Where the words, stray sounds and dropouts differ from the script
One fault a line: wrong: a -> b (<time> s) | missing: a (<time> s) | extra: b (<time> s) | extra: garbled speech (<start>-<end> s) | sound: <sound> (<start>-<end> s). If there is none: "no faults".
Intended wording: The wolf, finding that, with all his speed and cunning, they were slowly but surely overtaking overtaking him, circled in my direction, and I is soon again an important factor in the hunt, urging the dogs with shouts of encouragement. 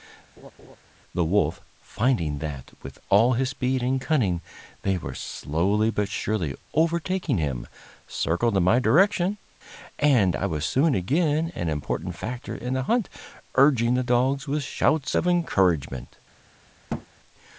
sound: laugh (0.4-0.8 s)
missing: overtaking (7.4 s)
wrong: is -> was (10.5 s)
sound: thud (16.9-17.1 s)